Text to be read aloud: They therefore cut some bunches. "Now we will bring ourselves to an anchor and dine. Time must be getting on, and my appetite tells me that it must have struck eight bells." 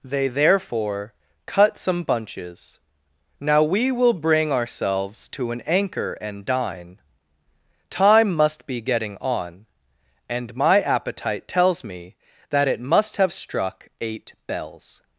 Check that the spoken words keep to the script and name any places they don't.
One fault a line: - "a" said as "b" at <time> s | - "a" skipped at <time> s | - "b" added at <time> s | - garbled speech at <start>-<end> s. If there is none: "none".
none